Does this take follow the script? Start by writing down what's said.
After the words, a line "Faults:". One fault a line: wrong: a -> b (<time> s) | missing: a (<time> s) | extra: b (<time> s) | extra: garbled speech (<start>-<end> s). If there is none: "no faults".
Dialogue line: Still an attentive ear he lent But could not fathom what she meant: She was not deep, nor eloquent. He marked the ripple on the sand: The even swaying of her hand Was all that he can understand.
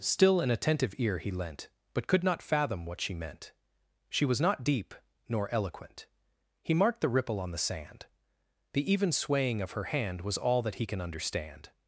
Still an attentive ear he lent But could not fathom what she meant: She was not deep, nor eloquent. He marked the ripple on the sand: The even swaying of her hand Was all that he can understand.
Faults:
no faults